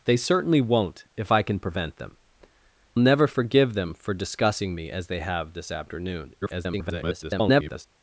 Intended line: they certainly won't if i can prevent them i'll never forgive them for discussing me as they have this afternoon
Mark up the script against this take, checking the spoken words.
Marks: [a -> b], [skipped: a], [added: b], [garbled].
they certainly won't if i can prevent them [skipped: i'll] never forgive them for discussing me as they have this afternoon [garbled]